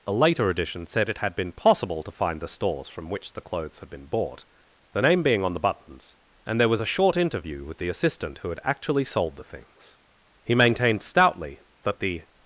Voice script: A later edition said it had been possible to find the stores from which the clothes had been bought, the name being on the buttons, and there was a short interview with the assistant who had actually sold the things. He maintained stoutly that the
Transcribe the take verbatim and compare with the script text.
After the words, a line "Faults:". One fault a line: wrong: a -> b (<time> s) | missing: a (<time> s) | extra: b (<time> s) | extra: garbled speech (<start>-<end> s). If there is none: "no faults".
A later edition said it had been possible to find the stores from which the clothes had been bought, the name being on the buttons, and there was a short interview with the assistant who had actually sold the things. He maintained stoutly that the
Faults:
no faults